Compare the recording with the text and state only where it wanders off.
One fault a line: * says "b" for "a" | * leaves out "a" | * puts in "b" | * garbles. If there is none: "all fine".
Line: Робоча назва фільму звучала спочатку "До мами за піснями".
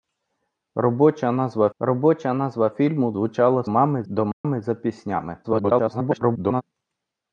* puts in "робоча назва"
* says "мами" for "спочатку"
* garbles